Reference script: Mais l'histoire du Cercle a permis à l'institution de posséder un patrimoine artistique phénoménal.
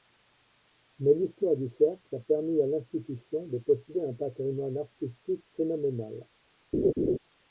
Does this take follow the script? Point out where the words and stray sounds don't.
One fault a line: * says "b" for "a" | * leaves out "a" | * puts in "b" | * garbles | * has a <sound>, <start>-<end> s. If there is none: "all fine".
* has a laugh, 6.7-7.2 s